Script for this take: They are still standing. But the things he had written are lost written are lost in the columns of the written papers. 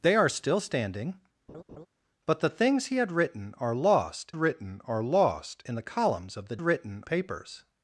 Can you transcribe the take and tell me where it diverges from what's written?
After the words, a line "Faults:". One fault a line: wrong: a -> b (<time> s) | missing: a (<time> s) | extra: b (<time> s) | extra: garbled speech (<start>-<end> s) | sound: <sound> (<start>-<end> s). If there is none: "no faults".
They are still standing. But the things he had written are lost written are lost in the columns of the written papers.
Faults:
sound: laugh (1.5-1.9 s)